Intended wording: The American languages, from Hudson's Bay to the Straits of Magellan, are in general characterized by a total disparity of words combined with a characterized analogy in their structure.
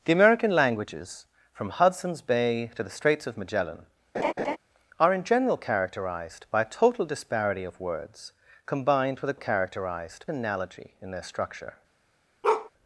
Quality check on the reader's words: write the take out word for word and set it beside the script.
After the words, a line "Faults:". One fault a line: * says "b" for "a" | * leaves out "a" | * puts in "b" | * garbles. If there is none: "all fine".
The American languages, from Hudson's Bay to the Straits of Magellan, are in general characterized by a total disparity of words combined with a characterized analogy in their structure.
Faults:
all fine